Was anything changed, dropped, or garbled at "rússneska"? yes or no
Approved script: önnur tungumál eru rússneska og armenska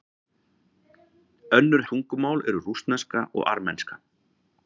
no